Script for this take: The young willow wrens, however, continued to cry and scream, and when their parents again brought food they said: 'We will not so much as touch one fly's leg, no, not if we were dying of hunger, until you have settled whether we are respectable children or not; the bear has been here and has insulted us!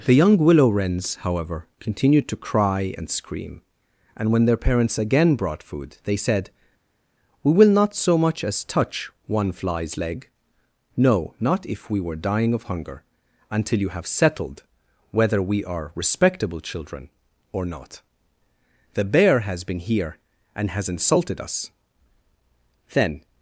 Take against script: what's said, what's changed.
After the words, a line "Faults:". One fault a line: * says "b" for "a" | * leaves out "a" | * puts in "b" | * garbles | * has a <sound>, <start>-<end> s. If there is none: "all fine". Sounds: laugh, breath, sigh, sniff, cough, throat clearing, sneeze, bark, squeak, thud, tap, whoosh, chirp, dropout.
The young willow wrens, however, continued to cry and scream, and when their parents again brought food they said: 'We will not so much as touch one fly's leg, no, not if we were dying of hunger, until you have settled whether we are respectable children or not; the bear has been here and has insulted us! Then
Faults:
* puts in "Then"